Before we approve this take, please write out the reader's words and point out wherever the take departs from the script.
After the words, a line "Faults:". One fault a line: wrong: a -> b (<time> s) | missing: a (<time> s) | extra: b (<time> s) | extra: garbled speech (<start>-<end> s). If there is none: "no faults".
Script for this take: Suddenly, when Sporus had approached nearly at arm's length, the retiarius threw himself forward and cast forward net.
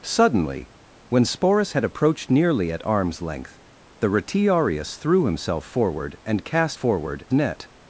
Suddenly, when Sporus had approached nearly at arm's length, the retiarius threw himself forward and cast forward net.
Faults:
no faults